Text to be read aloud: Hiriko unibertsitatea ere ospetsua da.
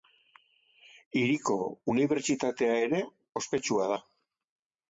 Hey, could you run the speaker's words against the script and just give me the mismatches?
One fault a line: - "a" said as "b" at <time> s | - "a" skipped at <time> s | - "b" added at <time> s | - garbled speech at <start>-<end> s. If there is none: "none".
none